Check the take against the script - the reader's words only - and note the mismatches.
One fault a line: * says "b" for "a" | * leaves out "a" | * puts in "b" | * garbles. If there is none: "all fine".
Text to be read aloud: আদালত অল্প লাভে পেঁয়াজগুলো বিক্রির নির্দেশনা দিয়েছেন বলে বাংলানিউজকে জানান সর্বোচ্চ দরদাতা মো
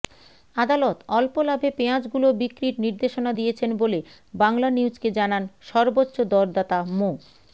all fine